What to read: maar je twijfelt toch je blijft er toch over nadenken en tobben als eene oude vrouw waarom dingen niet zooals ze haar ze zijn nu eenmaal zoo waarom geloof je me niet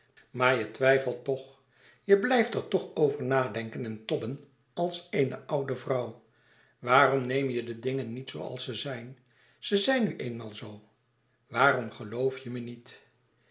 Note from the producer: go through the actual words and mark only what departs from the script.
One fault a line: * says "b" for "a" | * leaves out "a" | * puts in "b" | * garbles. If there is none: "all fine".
* puts in "neem je de"
* says "zijn" for "haar"